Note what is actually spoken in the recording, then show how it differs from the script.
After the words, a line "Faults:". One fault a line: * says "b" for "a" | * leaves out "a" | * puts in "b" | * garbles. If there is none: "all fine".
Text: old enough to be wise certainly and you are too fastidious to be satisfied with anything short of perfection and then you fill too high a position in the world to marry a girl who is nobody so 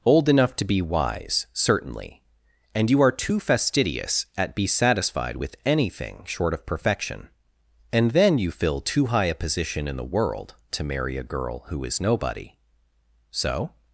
old enough to be wise certainly and you are too fastidious at be satisfied with anything short of perfection and then you fill too high a position in the world to marry a girl who is nobody so
Faults:
* says "at" for "to"